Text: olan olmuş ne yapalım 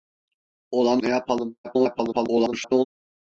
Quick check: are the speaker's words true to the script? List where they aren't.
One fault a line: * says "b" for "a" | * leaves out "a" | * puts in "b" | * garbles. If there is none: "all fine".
* leaves out "olmuş"
* garbles